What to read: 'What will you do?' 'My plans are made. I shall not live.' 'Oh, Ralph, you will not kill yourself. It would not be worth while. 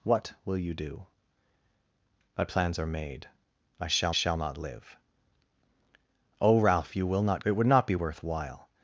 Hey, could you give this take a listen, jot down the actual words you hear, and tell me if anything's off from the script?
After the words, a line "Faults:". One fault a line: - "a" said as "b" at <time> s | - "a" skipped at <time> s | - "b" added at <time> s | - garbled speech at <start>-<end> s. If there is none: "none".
'What will you do?' 'My plans are made. I shall shall not live.' 'Oh, Ralph, you will not. It would not be worth while.
Faults:
- "shall" added at 4.1 s
- "kill yourself" skipped at 7.4 s